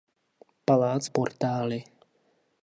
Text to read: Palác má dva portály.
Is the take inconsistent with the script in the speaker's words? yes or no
yes